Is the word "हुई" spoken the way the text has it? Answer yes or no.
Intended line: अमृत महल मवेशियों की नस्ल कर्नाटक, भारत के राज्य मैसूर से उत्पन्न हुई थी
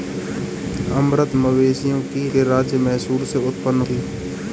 no